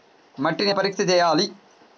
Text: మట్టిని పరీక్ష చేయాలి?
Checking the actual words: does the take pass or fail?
pass